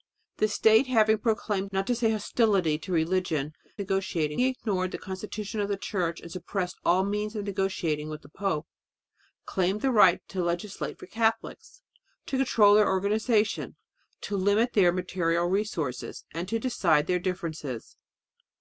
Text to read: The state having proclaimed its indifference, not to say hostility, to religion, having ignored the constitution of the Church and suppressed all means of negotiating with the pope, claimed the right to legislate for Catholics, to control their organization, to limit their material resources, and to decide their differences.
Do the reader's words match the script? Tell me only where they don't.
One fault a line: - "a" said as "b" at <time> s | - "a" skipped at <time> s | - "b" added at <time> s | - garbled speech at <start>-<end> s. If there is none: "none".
- "its indifference" skipped at 1.7 s
- "having" said as "negotiating" at 3.8 s